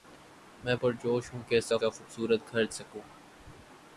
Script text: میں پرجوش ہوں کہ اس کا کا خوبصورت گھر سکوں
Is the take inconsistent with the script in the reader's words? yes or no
no